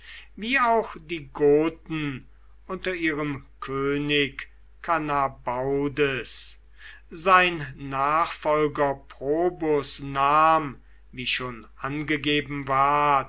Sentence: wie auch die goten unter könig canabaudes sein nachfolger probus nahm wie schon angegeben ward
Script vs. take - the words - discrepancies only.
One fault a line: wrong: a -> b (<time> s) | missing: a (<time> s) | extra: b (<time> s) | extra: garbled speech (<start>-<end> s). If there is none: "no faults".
extra: ihrem (3.0 s)